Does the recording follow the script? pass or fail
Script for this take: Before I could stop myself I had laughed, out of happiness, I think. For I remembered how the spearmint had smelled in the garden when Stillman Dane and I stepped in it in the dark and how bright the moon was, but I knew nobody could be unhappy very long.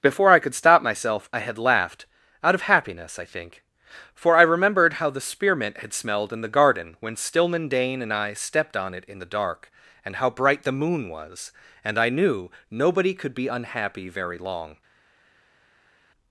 fail